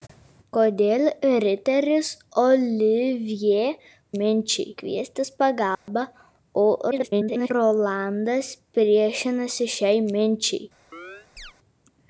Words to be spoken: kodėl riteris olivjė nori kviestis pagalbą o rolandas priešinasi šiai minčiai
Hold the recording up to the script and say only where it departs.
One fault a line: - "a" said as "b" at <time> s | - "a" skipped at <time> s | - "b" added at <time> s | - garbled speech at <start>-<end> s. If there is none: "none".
- "nori" said as "minčiai" at 4.1 s
- garbled speech at 6.9-7.5 s